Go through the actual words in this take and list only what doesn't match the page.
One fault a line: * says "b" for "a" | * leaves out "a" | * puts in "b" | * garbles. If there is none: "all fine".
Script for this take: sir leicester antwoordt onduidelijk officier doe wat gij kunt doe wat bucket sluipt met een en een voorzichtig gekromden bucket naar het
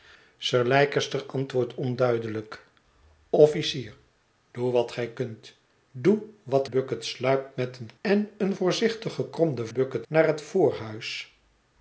all fine